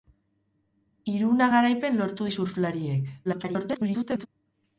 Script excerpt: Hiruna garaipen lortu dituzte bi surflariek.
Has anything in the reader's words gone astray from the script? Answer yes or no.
yes